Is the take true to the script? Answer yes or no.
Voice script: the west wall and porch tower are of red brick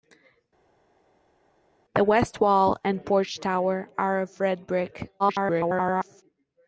no